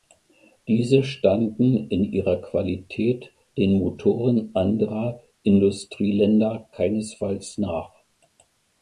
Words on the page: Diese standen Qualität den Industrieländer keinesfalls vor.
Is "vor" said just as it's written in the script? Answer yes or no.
no